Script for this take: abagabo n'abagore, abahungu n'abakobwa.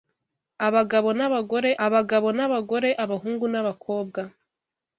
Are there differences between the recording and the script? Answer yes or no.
yes